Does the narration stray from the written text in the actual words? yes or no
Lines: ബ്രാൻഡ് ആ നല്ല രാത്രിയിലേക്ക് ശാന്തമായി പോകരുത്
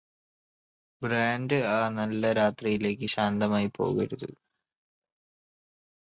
no